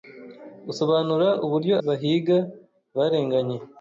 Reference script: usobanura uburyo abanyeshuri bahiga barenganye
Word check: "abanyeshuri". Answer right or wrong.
wrong